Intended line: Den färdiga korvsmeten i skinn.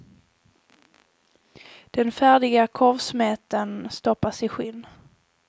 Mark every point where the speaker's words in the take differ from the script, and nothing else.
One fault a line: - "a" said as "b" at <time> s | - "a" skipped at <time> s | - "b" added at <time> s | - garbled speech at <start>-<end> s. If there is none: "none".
- "stoppas" added at 3.9 s